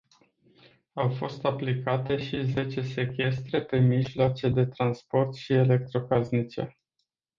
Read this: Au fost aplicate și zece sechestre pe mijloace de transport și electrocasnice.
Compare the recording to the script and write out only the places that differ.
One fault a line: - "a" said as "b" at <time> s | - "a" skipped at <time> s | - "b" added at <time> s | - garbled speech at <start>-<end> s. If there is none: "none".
none